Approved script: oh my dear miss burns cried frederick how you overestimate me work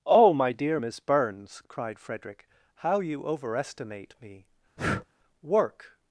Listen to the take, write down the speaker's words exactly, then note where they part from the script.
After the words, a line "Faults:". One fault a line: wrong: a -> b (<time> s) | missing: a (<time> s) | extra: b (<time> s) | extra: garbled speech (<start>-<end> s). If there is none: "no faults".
oh my dear miss burns cried frederick how you overestimate me work
Faults:
no faults